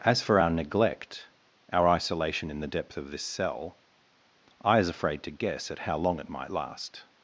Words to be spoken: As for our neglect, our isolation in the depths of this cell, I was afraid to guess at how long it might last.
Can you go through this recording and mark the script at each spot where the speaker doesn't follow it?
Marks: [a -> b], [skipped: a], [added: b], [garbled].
As for our neglect, our isolation in the [depths -> depth] of this cell, I [was -> is] afraid to guess at how long it might last.